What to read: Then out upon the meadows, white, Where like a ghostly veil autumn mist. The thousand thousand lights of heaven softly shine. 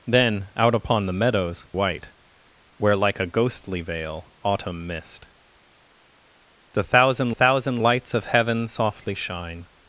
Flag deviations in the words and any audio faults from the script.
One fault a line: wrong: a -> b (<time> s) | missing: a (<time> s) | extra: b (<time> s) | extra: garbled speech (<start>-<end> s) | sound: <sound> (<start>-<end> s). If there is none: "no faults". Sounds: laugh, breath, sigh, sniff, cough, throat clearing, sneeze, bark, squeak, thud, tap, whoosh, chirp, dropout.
no faults